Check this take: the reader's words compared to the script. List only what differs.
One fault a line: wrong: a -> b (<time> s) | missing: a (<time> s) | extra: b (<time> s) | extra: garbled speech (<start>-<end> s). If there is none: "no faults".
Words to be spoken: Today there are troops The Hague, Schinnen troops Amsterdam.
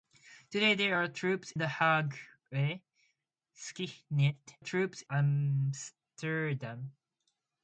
no faults